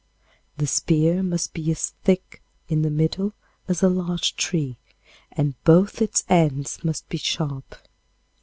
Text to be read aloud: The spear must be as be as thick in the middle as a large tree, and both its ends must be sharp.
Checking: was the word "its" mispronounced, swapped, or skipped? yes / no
no